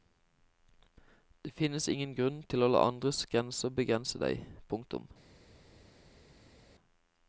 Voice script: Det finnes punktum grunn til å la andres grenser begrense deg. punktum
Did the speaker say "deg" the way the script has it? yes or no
yes